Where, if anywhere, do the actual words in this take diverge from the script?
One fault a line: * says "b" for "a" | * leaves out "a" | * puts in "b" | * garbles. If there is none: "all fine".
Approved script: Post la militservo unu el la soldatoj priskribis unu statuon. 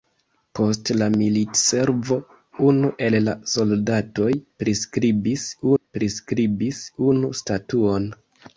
* puts in "priskribis"